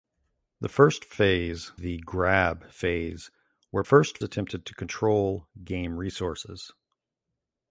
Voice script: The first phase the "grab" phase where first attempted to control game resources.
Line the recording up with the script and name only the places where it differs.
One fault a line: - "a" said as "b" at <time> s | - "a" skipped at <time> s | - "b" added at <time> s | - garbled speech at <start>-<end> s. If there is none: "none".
none